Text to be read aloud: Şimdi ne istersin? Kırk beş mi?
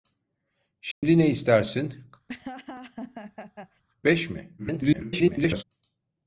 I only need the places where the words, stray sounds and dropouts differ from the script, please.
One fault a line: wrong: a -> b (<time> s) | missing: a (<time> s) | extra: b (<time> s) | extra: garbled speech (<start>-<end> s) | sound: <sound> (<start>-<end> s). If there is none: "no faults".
sound: dropout (0.9-1.0 s)
missing: Kırk (2.0 s)
sound: laugh (2.3-3.8 s)
extra: garbled speech (4.6-5.6 s)